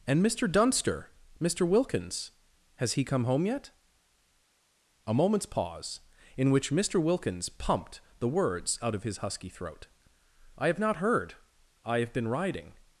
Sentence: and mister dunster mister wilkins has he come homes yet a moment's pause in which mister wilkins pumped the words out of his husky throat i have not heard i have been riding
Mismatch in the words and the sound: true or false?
true